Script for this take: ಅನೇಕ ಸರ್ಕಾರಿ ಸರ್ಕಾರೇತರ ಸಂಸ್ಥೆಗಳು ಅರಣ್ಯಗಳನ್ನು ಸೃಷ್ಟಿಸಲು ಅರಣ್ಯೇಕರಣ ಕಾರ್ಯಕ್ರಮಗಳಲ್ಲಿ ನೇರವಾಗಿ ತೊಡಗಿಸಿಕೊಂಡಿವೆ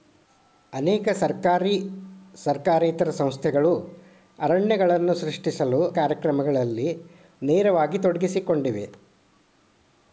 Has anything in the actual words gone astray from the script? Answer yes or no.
yes